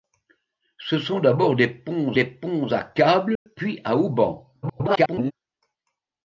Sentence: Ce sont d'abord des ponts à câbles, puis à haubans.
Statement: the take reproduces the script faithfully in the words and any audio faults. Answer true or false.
false